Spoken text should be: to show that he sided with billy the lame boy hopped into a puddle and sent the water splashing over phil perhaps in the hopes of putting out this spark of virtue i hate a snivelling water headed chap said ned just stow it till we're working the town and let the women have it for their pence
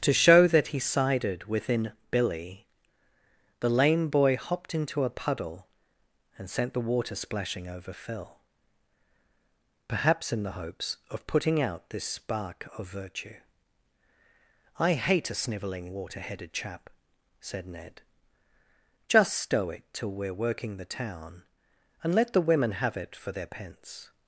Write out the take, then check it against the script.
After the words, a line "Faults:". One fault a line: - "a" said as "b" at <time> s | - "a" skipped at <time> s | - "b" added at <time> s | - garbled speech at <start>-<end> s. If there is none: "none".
to show that he sided within billy the lame boy hopped into a puddle and sent the water splashing over phil perhaps in the hopes of putting out this spark of virtue i hate a snivelling water headed chap said ned just stow it till we're working the town and let the women have it for their pence
Faults:
- "with" said as "within" at 1.4 s